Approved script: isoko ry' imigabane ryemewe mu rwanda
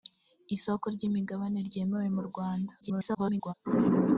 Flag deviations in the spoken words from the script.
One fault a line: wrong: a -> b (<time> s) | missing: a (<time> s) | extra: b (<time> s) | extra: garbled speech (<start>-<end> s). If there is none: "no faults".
extra: garbled speech (2.8-3.5 s)